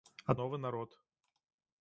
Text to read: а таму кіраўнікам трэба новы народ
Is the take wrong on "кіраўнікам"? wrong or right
wrong